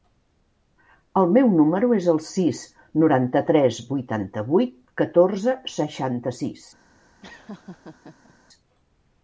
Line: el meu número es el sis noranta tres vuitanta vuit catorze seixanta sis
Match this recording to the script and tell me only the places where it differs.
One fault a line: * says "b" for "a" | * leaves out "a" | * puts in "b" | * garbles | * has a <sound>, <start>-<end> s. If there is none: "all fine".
* has a laugh, 7.2-8.3 s